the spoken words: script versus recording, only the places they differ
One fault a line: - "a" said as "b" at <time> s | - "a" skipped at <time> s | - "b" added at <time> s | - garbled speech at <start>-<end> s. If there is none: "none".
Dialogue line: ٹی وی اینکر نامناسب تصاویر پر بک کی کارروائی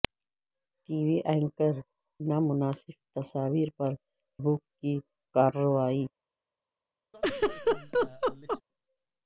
none